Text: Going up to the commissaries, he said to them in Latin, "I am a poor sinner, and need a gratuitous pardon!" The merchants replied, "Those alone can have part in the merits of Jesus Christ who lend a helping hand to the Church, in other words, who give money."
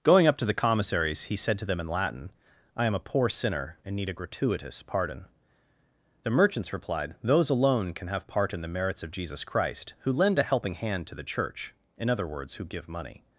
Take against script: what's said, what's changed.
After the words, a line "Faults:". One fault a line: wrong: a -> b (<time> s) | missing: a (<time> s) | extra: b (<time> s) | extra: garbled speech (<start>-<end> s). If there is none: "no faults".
Going up to the commissaries, he said to them in Latin, "I am a poor sinner, and need a gratuitous pardon!" The merchants replied, "Those alone can have part in the merits of Jesus Christ who lend a helping hand to the Church, in other words, who give money."
Faults:
no faults